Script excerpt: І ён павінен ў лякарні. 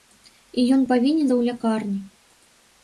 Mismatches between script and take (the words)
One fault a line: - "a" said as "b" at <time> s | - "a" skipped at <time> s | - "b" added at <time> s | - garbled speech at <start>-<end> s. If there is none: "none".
none